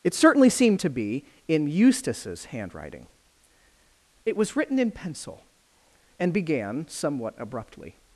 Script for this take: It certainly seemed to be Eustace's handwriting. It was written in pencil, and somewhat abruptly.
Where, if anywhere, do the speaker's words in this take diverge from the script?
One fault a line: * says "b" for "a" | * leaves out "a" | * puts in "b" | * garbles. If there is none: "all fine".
* puts in "in"
* puts in "began"